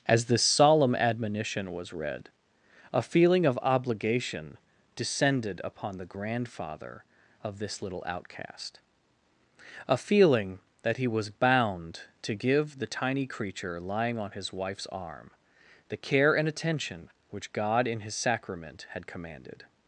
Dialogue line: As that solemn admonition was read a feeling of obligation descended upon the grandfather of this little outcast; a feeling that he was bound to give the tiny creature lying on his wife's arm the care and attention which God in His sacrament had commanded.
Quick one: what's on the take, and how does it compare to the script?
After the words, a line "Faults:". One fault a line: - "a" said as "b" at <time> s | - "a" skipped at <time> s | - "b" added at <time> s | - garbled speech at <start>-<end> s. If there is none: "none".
As this solemn admonition was read a feeling of obligation descended upon the grandfather of this little outcast; a feeling that he was bound to give the tiny creature lying on his wife's arm the care and attention which God in His sacrament had commanded.
Faults:
- "that" said as "this" at 0.2 s